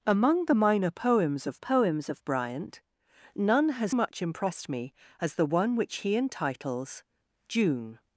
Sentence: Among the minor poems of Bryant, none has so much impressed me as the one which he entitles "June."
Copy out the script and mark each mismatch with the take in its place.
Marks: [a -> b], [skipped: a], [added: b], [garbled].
Among the minor poems of [added: poems of] Bryant, none has [skipped: so] much impressed me as the one which he entitles "June."